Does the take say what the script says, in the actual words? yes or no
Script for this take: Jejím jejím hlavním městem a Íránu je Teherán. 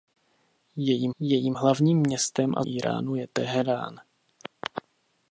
yes